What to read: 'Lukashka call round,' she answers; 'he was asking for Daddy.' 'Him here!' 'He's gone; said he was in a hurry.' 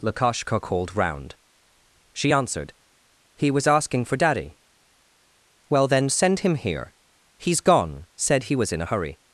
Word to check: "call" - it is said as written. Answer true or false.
false